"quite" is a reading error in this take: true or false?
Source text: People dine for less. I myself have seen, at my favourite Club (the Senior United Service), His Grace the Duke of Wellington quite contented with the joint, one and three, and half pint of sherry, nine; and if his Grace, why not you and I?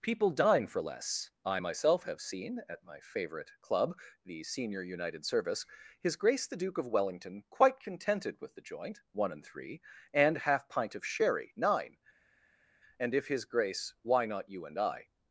false